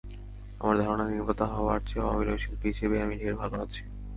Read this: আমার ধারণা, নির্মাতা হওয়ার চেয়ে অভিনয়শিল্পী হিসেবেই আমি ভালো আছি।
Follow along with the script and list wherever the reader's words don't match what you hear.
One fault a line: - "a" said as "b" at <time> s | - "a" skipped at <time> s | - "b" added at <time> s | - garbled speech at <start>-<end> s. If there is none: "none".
- "ঢের" added at 3.2 s